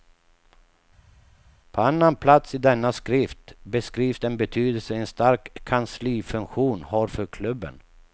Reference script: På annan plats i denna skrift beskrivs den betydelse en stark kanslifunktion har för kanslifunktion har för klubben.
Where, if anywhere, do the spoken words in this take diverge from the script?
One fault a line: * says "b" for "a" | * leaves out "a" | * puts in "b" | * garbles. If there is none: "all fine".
* leaves out "kanslifunktion har för"